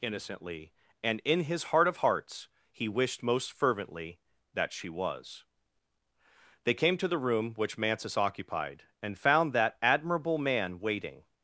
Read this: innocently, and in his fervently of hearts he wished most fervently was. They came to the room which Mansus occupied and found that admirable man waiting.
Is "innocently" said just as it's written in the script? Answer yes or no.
yes